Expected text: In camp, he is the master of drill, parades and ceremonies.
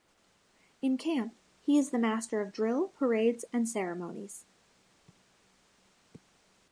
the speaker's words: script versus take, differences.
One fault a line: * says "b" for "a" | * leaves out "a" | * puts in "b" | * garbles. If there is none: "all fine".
all fine